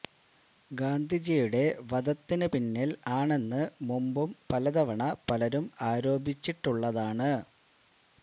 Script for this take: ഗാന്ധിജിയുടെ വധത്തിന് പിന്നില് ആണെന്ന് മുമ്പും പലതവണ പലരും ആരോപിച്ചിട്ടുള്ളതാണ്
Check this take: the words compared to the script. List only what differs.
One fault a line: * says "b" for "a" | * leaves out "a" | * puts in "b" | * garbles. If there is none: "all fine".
all fine